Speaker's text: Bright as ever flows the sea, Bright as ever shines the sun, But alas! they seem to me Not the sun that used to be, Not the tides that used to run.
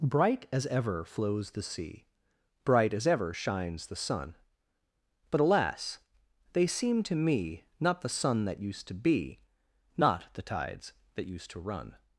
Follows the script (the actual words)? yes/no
yes